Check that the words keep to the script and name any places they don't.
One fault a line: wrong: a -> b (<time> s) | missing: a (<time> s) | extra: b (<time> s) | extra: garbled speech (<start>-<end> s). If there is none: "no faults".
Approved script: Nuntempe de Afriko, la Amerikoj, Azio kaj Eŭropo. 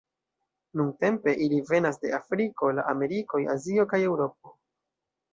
extra: ili venas (1.5 s)